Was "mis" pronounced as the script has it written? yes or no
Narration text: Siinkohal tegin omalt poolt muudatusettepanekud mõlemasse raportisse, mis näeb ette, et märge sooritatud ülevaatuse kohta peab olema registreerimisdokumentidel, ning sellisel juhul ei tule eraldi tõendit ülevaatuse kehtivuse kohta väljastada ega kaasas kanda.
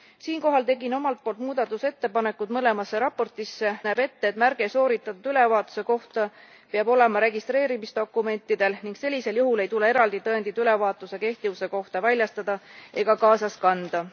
no